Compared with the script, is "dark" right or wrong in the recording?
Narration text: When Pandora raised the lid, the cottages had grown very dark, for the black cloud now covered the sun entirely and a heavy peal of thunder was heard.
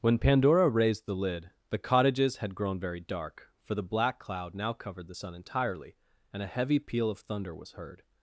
right